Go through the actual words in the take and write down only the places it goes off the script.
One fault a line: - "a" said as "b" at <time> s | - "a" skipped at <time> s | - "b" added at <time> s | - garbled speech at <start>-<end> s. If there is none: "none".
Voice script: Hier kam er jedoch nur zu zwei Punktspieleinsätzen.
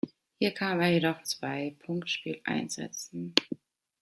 - "nur zu" skipped at 1.3 s